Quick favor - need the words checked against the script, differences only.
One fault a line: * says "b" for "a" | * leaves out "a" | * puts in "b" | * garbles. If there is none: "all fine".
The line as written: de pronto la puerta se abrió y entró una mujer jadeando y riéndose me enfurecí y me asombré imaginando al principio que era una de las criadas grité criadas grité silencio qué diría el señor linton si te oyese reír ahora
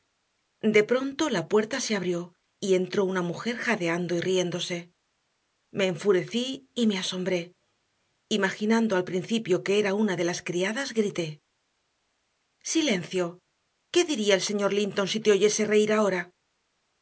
* leaves out "criadas grité"